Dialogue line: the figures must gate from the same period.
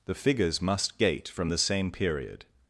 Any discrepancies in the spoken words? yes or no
no